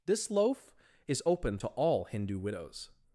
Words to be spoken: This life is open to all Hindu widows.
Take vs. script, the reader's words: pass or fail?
fail